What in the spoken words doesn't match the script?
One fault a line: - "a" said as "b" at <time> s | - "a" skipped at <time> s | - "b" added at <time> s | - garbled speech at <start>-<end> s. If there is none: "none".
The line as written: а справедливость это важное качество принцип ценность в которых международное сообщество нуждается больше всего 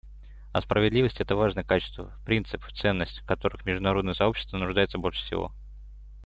none